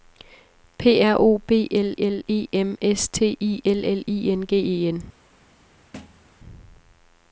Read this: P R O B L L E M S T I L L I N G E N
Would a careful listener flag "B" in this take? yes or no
no